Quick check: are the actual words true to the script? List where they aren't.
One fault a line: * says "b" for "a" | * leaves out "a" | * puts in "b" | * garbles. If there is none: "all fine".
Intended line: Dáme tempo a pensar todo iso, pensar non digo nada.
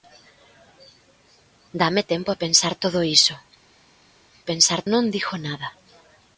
all fine